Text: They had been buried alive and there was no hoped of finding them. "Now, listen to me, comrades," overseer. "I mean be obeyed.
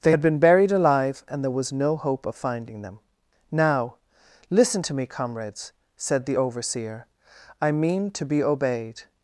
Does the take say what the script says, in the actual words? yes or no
no